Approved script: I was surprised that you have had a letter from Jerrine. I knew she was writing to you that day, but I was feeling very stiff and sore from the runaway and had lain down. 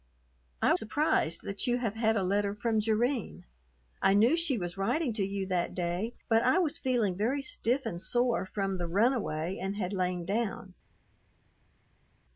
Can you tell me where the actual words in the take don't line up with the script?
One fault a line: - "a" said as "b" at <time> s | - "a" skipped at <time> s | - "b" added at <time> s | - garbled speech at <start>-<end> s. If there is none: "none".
- "was" skipped at 0.7 s